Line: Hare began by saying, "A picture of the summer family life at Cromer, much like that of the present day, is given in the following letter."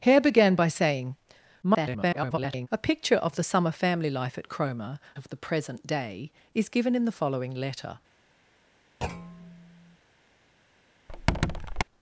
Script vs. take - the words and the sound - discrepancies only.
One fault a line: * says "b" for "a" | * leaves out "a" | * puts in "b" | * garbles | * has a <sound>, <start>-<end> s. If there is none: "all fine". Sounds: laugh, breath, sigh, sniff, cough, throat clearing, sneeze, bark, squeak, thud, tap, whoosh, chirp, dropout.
* garbles
* leaves out "much like that"
* has a thud, 9.0-10.0 s
* has a squeak, 11.1-11.8 s